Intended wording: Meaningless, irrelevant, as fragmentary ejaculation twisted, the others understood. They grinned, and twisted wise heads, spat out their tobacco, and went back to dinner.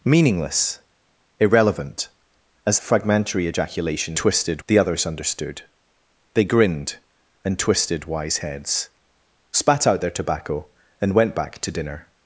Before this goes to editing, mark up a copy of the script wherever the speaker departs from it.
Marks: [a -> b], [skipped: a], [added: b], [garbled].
Meaningless, irrelevant, as fragmentary ejaculation twisted, the others understood. They grinned, and twisted wise heads, spat out their tobacco, and went back to dinner.